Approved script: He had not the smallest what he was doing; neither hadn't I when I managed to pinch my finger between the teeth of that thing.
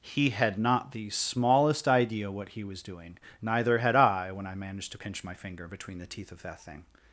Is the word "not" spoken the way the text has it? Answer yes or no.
yes